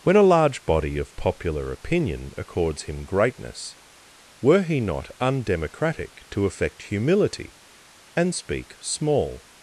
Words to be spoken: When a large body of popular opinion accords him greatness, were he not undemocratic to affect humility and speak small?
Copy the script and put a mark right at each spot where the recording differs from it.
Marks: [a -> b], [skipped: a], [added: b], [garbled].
When a large body of popular opinion accords him greatness, were he not undemocratic to affect humility and speak small?